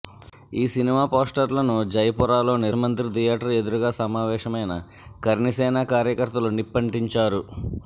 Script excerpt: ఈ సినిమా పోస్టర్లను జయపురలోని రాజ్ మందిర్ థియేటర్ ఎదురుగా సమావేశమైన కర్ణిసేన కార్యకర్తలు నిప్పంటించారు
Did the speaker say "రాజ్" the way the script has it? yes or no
no